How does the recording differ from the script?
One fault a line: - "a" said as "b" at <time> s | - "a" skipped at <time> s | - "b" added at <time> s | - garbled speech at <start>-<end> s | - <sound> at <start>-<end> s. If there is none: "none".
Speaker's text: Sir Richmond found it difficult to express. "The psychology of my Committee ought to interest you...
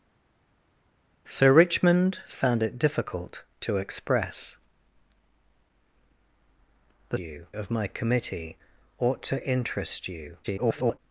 - "psychology" said as "you" at 7.2 s
- garbled speech at 10.4-11.0 s